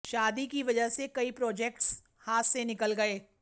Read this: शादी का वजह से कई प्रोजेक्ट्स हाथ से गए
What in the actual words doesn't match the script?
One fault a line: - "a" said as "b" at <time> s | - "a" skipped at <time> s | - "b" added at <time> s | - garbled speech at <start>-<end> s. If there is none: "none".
- "का" said as "की" at 0.5 s
- "निकल" added at 2.6 s